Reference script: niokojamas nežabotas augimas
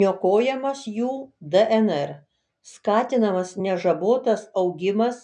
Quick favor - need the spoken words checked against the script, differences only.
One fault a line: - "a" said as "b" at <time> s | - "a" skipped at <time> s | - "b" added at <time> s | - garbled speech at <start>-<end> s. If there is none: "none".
- "jų dnr skatinamas" added at 0.9 s